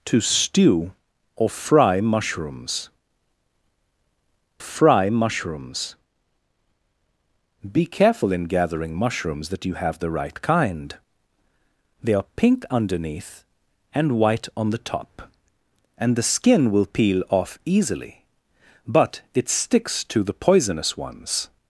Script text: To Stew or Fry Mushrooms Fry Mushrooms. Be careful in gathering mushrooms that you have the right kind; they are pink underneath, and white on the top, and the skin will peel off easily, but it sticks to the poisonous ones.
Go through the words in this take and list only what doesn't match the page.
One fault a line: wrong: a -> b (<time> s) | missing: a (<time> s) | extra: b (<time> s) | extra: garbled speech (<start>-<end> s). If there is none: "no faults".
no faults